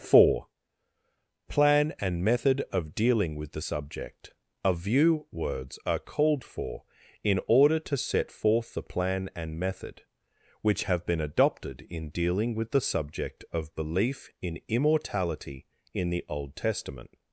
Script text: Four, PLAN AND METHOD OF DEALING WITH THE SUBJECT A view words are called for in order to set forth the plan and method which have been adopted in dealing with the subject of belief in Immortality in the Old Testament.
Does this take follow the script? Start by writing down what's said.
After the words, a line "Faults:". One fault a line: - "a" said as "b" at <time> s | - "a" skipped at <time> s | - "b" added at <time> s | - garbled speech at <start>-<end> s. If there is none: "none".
Four, PLAN AND METHOD OF DEALING WITH THE SUBJECT A view words are called for in order to set forth the plan and method which have been adopted in dealing with the subject of belief in Immortality in the Old Testament.
Faults:
none